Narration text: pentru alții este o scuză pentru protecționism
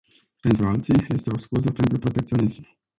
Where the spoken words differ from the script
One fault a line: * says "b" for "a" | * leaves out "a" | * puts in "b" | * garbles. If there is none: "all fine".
all fine